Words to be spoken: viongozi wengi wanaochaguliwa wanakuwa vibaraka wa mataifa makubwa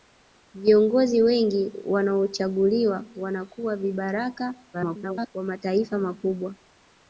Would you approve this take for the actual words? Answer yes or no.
no